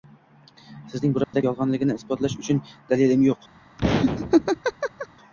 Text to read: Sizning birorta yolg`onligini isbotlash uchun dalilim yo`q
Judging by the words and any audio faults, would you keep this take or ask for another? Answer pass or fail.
fail